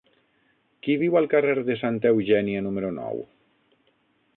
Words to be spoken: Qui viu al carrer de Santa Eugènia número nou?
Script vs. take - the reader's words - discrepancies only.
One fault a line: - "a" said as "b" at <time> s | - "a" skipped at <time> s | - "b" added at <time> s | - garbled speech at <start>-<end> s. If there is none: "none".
none